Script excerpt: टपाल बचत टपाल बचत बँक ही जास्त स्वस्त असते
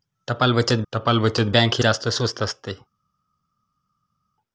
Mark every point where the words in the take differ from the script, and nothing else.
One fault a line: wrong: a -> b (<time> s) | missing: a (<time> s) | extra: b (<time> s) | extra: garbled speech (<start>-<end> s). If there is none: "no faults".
no faults